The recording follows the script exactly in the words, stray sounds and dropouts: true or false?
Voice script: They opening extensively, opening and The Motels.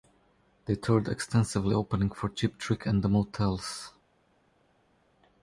false